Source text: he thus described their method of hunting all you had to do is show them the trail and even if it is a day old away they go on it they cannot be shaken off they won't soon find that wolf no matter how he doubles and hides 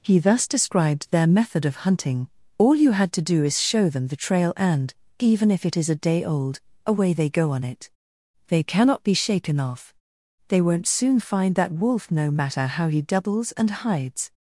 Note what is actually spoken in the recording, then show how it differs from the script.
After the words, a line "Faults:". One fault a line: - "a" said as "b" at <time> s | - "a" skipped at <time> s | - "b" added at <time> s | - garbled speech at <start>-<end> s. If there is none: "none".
he thus described their method of hunting all you had to do is show them the trail and even if it is a day old away they go on it they cannot be shaken off they won't soon find that wolf no matter how he doubles and hides
Faults:
none